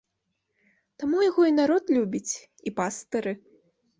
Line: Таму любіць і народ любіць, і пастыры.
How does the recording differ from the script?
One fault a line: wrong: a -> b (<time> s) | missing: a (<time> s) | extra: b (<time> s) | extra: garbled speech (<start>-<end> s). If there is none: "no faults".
wrong: любіць -> яго (1.3 s)